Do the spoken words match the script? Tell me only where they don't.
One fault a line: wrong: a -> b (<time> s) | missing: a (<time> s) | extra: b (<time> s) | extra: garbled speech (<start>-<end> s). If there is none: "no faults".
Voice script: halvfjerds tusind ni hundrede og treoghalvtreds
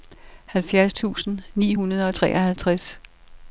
no faults